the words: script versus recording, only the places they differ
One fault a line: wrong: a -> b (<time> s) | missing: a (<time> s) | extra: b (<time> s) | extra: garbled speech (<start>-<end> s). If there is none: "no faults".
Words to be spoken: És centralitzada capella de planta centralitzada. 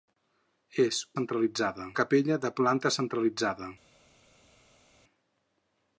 no faults